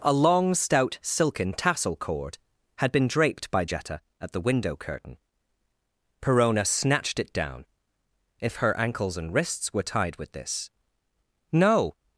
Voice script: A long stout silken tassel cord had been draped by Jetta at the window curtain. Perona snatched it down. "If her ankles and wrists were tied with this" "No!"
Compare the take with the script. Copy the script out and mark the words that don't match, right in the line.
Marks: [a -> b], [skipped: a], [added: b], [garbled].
A long stout silken tassel cord had been draped by Jetta at the window curtain. Perona snatched it down. "If her ankles and wrists were tied with this" "No!"